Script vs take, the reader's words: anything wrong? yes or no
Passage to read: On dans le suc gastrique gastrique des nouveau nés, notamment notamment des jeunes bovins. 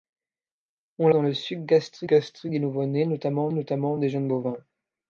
no